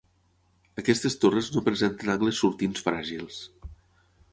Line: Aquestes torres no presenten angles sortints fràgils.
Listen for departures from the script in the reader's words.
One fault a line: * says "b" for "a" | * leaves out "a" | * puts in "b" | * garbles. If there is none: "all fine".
all fine